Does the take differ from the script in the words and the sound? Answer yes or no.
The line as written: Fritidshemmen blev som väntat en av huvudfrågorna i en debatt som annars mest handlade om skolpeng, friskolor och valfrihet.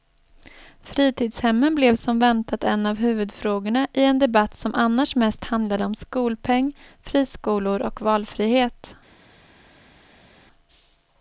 no